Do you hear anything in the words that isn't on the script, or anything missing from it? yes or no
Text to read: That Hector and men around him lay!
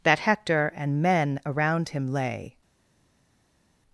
no